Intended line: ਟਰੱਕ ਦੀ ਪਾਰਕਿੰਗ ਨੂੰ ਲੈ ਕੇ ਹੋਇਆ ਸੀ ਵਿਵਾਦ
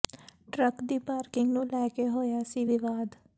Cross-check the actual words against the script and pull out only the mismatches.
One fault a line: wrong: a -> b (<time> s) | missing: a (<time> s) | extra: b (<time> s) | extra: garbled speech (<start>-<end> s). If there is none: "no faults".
no faults